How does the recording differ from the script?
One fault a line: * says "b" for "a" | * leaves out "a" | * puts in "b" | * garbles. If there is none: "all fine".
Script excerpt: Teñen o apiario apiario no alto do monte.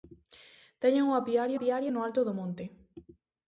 all fine